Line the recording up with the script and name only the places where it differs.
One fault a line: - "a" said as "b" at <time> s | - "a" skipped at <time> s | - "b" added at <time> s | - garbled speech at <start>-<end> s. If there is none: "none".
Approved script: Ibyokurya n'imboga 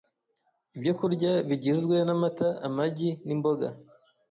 - "bigizwe n'amata amagi" added at 1.5 s